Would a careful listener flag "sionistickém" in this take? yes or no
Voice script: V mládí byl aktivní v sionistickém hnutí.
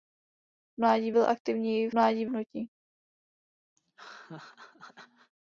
yes